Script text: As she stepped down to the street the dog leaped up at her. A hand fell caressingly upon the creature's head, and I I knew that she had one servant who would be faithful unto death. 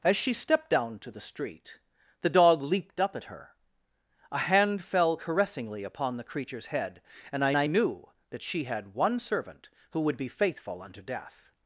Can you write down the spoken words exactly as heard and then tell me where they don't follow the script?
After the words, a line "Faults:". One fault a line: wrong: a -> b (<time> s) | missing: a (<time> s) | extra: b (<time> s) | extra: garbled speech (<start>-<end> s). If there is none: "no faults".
As she stepped down to the street the dog leaped up at her. A hand fell caressingly upon the creature's head, and I I knew that she had one servant who would be faithful unto death.
Faults:
no faults